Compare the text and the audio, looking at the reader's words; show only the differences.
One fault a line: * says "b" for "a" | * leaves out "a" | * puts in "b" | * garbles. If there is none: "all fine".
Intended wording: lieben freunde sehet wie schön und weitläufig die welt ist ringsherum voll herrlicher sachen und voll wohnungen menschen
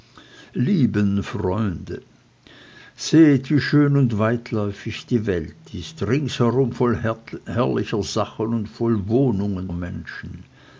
all fine